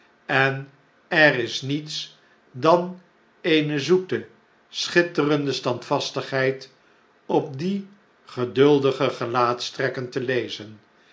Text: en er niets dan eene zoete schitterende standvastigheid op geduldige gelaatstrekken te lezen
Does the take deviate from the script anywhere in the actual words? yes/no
yes